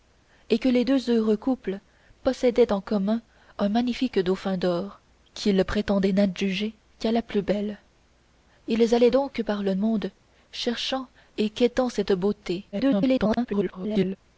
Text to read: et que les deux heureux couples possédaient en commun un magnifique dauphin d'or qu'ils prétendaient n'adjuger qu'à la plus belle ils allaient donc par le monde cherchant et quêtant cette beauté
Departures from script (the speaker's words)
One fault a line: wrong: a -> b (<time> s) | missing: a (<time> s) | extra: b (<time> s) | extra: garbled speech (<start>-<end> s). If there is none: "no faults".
extra: garbled speech (12.7-14.2 s)